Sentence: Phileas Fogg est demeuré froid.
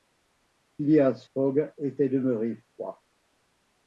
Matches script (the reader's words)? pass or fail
fail